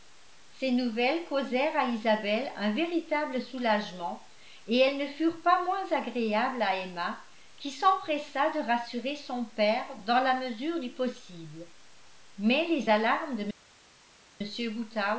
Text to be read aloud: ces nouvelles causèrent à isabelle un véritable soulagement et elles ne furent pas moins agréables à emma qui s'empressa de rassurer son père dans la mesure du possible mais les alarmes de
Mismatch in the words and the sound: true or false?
false